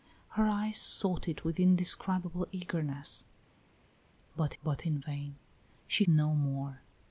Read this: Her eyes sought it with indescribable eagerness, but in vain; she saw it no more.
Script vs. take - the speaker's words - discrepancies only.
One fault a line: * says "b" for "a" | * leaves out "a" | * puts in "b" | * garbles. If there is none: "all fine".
* puts in "but"
* leaves out "saw it"